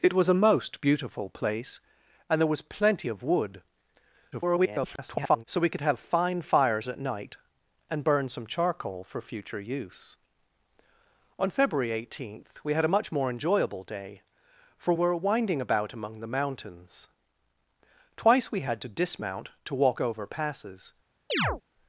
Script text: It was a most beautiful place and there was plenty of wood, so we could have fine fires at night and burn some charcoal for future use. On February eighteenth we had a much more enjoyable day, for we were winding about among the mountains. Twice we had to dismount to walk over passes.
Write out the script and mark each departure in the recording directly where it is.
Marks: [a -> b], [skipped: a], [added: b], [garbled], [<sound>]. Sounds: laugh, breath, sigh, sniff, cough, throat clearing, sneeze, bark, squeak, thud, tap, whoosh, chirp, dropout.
It was a most beautiful place and there was plenty of wood, [garbled] so we could have fine fires at night and burn some charcoal for future use. On February eighteenth we had a much more enjoyable day, for [skipped: we] were winding about among the mountains. Twice we had to dismount to walk over passes. [chirp]